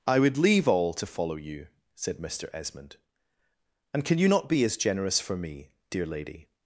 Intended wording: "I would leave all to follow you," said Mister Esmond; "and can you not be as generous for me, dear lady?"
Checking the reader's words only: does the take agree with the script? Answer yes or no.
yes